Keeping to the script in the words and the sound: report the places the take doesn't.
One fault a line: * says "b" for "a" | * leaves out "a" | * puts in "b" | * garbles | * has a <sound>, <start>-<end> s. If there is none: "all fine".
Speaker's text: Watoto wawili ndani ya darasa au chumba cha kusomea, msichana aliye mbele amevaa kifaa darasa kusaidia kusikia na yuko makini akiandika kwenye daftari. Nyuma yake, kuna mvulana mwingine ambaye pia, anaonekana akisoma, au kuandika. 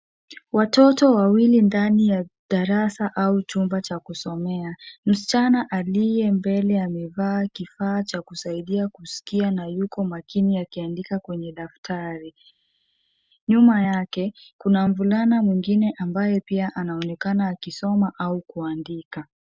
* says "cha" for "darasa"